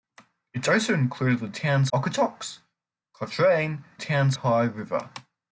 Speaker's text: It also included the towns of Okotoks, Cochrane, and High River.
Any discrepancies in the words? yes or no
yes